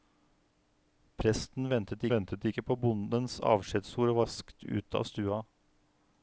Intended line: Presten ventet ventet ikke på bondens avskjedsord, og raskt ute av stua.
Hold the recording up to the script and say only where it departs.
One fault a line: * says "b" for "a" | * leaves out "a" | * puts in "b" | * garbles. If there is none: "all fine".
all fine